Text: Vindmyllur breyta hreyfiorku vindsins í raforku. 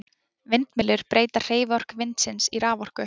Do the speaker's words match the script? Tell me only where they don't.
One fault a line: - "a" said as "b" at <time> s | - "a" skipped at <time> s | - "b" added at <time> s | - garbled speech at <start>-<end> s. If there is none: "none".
none